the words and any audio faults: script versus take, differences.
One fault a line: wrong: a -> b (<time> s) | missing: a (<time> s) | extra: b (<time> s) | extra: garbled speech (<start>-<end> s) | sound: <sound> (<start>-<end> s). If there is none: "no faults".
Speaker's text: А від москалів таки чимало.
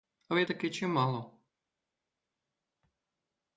missing: москалів (0.5 s)